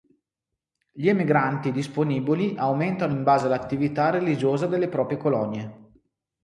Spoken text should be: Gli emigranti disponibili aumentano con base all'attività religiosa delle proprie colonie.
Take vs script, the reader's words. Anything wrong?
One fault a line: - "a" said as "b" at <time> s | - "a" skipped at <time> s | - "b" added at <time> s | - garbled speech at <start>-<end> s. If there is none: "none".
- "con" said as "in" at 3.1 s